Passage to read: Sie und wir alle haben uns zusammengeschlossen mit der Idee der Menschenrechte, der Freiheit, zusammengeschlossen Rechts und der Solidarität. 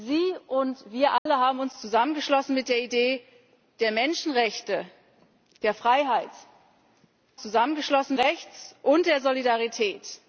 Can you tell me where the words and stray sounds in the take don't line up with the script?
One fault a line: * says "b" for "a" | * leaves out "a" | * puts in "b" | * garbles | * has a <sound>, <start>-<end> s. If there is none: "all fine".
* has a dropout, 1.2-1.3 s